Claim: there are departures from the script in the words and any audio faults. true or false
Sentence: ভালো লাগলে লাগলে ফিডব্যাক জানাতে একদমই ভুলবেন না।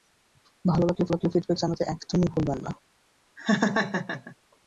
true